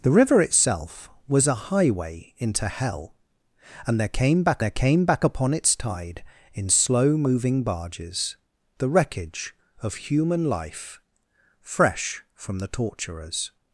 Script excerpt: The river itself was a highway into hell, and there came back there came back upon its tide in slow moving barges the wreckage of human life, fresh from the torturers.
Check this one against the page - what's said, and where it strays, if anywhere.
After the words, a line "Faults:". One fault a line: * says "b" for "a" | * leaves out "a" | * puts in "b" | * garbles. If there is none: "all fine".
The river itself was a highway into hell, and there came back there came back upon its tide in slow moving barges the wreckage of human life, fresh from the torturers.
Faults:
all fine